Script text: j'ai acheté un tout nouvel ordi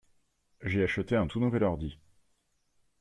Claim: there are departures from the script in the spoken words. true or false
false